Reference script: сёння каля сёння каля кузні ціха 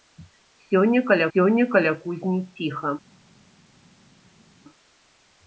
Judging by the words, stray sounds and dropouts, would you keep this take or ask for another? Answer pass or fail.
pass